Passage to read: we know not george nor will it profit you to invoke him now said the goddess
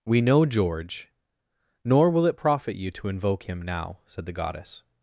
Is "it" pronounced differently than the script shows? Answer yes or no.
no